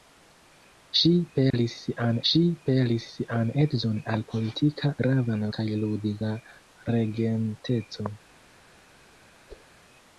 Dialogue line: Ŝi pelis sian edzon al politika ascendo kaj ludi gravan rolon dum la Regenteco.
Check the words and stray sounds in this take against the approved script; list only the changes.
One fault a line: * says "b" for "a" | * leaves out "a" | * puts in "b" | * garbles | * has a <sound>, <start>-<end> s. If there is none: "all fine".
* has a dropout, 1.5-1.5 s
* puts in "ŝi pelis sian"
* says "gravan" for "ascendo"
* leaves out "gravan rolon dum"
* has a whoosh, 9.5-9.7 s